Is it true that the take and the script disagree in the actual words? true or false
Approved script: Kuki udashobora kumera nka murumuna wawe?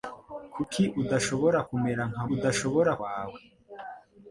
true